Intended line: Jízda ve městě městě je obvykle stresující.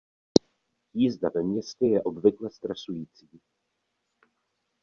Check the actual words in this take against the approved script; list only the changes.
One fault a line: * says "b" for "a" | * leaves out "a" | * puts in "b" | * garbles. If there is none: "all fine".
* leaves out "městě"